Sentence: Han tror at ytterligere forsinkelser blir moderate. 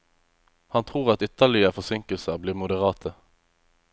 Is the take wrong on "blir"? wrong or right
right